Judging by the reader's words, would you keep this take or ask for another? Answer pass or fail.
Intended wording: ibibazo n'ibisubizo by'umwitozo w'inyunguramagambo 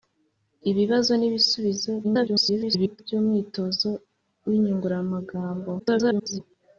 fail